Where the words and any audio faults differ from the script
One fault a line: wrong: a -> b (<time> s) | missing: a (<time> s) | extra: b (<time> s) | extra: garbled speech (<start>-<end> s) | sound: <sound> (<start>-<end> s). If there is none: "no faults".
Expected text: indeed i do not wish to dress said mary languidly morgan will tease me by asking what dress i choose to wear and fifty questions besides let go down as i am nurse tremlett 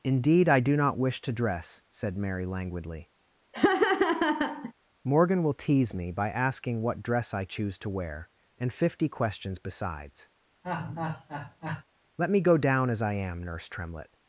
sound: laugh (3.5-4.7 s)
sound: laugh (10.6-11.8 s)
extra: me (12.3 s)